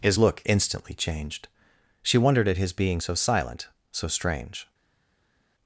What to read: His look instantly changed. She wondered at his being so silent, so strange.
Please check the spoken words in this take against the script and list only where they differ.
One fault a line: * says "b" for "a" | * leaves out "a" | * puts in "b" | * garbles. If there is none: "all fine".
all fine